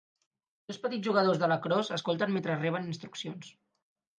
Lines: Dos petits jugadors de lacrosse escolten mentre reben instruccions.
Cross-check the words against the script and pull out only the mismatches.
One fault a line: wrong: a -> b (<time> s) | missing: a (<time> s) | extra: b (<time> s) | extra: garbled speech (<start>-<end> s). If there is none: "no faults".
no faults